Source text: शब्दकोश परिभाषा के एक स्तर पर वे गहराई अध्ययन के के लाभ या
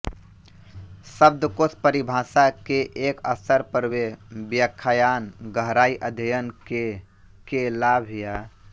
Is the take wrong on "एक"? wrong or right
right